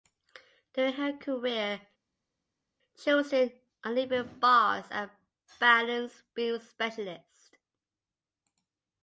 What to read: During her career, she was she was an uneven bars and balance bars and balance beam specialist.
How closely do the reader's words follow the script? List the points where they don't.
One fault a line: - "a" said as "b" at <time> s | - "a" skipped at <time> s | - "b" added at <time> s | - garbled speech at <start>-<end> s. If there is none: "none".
- "she was" skipped at 3.3 s
- "bars and balance" skipped at 6.2 s